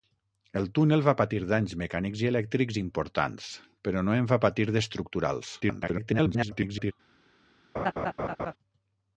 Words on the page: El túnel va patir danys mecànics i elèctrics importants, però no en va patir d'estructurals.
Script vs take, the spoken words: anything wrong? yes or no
yes